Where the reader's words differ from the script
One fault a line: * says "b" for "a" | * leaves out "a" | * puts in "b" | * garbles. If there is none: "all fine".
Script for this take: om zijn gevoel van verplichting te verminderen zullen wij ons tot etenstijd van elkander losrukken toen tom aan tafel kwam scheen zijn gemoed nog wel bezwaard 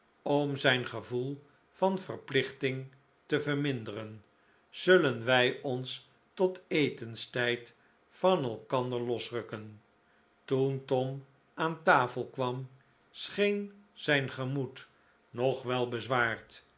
all fine